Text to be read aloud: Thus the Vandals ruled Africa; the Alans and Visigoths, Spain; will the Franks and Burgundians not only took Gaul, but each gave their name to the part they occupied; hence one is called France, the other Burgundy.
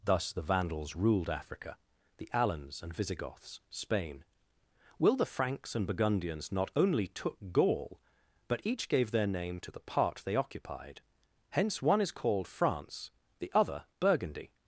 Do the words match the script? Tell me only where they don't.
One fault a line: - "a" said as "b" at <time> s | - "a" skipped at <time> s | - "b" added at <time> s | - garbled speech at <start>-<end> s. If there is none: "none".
none